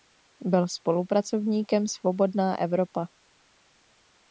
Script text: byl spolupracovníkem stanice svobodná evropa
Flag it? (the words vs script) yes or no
yes